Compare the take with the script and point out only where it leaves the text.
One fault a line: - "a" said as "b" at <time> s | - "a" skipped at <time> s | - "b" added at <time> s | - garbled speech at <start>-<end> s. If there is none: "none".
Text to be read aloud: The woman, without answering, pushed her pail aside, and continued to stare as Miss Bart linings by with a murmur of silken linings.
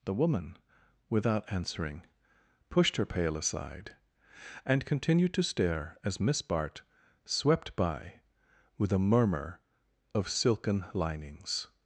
- "linings" said as "swept" at 7.2 s